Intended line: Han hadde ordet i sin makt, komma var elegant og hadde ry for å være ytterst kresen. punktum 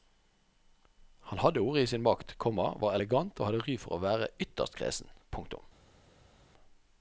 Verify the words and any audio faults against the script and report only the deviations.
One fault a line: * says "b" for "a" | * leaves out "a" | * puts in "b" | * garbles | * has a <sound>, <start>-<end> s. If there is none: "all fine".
all fine